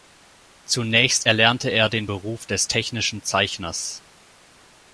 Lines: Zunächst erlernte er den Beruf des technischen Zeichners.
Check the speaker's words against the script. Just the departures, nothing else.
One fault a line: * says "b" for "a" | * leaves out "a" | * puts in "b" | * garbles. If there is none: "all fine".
all fine